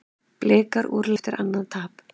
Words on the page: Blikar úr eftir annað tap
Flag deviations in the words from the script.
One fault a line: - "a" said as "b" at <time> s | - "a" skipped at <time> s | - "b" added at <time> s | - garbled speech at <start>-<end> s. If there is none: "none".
none